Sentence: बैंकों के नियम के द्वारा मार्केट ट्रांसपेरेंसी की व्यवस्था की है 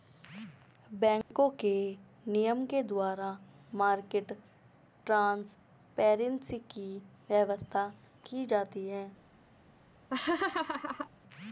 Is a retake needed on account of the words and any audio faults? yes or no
yes